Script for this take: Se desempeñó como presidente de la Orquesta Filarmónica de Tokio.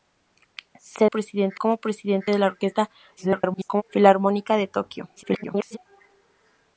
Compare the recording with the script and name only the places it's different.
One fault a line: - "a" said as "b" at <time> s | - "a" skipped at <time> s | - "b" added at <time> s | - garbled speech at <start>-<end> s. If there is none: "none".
- "desempeñó" said as "presidente" at 1.0 s
- garbled speech at 3.2-3.8 s
- garbled speech at 5.2-5.8 s